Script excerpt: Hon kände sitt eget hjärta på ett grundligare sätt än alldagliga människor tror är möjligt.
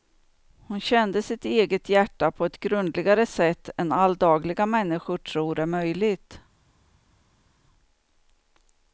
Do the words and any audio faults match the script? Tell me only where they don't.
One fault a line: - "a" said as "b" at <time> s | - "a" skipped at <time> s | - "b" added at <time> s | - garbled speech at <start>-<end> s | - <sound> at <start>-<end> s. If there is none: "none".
none